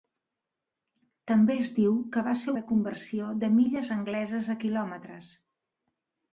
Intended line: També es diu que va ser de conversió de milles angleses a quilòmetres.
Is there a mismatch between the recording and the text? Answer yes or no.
no